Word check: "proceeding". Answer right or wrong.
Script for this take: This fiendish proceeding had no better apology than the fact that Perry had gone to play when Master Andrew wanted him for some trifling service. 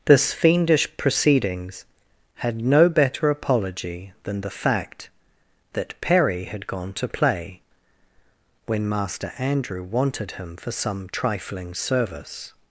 wrong